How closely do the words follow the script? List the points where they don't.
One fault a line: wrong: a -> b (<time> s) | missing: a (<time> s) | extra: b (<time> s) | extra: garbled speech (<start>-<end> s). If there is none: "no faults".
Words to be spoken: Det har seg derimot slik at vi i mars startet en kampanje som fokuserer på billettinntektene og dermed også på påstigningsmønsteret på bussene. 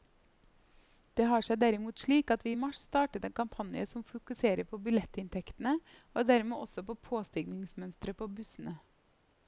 no faults